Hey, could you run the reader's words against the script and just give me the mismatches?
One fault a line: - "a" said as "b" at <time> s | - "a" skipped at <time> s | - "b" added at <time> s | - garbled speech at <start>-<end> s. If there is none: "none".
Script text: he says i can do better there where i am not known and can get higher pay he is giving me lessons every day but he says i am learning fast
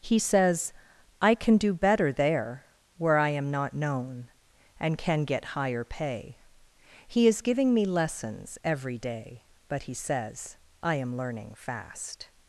none